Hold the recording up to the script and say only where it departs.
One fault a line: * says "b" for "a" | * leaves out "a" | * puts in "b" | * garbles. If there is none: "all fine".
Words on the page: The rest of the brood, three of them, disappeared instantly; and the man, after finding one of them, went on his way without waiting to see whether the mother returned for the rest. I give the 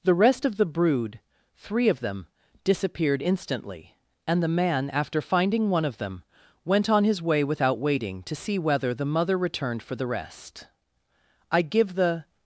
all fine